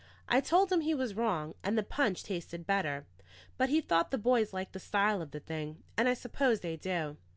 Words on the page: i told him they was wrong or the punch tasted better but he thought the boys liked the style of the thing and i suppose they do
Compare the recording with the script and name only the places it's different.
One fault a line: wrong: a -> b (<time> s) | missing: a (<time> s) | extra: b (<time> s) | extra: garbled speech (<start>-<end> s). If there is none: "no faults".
wrong: they -> he (0.8 s)
wrong: or -> and (1.6 s)